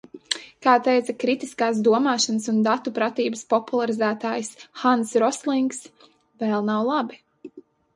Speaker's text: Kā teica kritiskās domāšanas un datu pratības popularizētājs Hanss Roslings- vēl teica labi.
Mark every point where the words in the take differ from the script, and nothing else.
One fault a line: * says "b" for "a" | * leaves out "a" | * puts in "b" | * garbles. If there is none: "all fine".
* says "nav" for "teica"